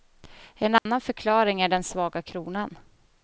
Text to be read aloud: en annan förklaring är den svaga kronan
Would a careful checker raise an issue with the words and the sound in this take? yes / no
yes